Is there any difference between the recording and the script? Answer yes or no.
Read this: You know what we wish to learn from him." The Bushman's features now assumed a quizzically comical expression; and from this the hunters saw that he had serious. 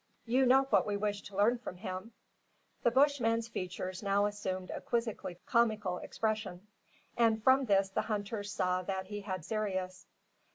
no